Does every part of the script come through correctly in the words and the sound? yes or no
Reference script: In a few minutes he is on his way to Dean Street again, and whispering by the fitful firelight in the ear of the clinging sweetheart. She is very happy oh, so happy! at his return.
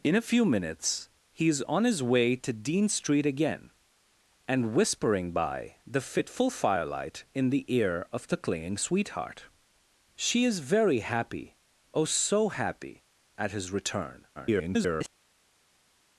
no